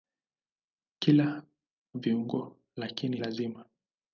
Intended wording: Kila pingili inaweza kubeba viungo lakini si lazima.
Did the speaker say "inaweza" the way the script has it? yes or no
no